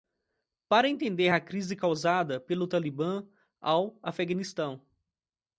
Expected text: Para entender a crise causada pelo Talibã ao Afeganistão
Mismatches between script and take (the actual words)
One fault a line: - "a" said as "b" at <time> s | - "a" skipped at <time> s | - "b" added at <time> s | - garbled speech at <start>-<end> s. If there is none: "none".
none